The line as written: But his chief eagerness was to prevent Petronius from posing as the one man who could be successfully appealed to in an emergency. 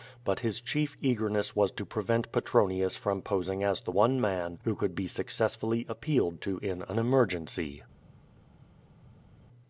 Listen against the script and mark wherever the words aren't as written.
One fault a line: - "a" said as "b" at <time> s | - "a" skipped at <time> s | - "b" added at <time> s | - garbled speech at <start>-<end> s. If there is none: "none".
none